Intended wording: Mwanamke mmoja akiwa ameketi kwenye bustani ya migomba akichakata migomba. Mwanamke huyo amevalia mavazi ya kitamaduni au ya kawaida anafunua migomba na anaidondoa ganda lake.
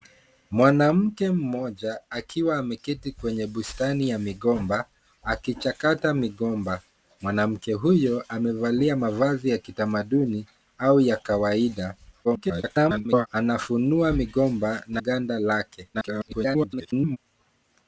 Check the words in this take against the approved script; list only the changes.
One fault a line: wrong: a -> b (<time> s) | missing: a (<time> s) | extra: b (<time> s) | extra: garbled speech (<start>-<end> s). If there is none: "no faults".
extra: garbled speech (12.2-13.3 s)
missing: anaidondoa (15.0 s)
extra: garbled speech (15.9-17.2 s)